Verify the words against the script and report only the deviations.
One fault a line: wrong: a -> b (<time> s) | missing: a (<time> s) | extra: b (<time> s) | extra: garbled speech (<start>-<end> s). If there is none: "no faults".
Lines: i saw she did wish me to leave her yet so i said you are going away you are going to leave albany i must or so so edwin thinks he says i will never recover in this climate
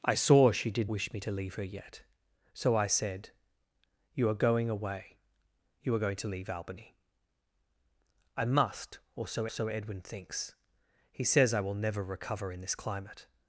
no faults